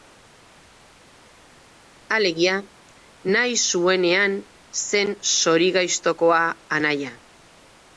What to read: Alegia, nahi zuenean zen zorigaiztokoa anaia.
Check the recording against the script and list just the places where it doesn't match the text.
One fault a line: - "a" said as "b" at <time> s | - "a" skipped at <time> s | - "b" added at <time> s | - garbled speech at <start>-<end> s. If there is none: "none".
none